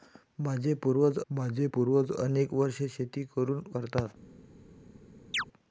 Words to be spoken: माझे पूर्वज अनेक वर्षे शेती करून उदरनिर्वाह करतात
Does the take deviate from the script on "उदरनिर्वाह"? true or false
true